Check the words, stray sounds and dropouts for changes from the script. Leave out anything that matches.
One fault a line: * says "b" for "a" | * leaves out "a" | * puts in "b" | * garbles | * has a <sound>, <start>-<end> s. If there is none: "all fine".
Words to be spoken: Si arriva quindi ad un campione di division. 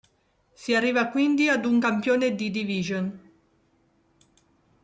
all fine